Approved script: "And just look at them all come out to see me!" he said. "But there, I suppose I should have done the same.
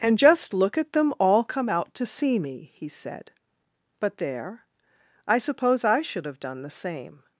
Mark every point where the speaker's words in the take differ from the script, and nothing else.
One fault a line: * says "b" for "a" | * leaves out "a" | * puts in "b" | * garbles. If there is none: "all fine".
all fine